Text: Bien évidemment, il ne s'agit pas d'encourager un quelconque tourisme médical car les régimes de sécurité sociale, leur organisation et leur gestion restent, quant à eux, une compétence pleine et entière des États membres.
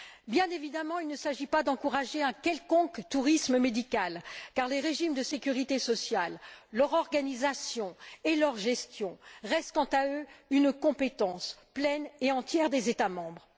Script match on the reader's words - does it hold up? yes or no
yes